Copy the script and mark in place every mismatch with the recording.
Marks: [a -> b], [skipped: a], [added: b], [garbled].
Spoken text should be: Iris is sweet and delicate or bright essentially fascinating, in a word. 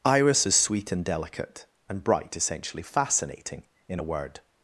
Iris is sweet and delicate [or -> and] bright essentially fascinating, in a word.